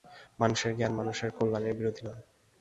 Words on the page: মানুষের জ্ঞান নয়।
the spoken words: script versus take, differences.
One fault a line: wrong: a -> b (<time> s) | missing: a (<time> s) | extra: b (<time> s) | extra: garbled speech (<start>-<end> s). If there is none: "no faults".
extra: মানুষের কল্যাণের বিরোধী (1.0 s)